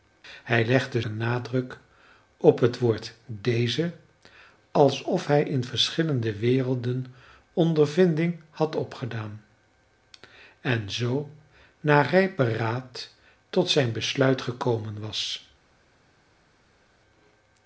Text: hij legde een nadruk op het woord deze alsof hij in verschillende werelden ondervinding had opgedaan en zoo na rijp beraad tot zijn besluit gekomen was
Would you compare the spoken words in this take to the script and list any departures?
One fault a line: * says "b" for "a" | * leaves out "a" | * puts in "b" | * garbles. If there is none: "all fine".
all fine